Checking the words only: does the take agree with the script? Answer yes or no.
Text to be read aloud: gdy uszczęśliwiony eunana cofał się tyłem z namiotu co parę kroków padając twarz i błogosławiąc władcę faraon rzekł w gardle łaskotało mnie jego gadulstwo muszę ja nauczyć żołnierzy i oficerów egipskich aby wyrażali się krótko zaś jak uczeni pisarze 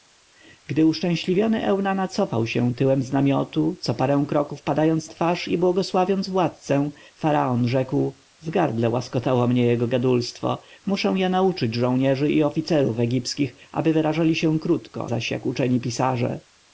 yes